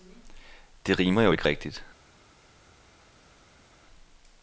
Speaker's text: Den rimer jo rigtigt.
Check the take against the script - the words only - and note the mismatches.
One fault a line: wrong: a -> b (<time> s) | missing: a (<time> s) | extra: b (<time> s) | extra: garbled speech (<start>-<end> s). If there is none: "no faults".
wrong: Den -> Det (0.9 s)
extra: ikke (1.3 s)